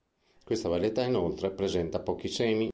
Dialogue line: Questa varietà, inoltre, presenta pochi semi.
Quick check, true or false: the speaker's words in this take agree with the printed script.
true